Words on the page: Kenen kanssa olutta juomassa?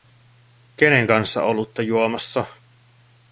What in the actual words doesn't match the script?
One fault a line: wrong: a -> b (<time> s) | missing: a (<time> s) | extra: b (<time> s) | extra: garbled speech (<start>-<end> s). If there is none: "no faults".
no faults